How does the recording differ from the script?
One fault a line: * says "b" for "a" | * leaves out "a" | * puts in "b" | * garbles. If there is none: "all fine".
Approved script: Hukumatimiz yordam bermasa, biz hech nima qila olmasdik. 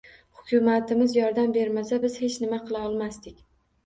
all fine